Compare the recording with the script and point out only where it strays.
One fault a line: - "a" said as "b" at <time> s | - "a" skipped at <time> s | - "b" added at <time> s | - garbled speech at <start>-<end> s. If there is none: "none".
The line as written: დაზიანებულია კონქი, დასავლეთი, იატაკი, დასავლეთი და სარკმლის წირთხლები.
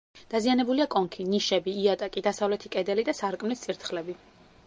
- "დასავლეთი" said as "ნიშები" at 1.3 s
- "კედელი" added at 2.8 s